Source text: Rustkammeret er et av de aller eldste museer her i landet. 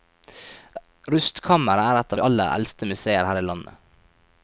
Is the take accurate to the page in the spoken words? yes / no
yes